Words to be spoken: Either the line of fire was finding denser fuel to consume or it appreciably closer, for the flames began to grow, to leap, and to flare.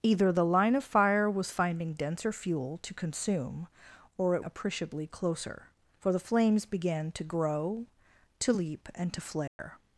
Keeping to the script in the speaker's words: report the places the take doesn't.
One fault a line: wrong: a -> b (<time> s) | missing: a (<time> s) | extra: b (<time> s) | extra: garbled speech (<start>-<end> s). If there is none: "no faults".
no faults